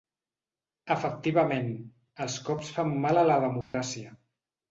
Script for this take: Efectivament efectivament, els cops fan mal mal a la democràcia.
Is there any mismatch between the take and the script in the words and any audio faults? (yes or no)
yes